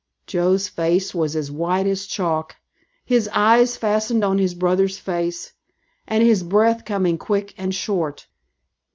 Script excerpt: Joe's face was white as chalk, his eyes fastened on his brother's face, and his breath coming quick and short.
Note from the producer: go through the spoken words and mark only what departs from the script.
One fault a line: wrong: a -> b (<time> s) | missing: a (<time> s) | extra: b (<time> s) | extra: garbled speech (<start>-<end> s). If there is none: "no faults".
extra: as (1.4 s)